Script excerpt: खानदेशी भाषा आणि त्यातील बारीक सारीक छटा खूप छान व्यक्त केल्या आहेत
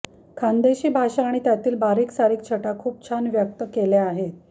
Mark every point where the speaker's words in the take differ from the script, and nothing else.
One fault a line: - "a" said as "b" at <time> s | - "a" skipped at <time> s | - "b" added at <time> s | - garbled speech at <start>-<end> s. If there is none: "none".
none